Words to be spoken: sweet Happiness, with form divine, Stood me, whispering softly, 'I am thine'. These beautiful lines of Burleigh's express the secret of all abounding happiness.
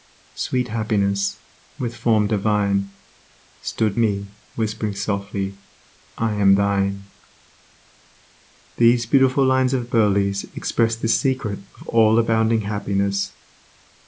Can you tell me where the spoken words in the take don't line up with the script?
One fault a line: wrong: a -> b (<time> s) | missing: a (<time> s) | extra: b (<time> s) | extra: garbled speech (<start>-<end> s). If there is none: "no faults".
no faults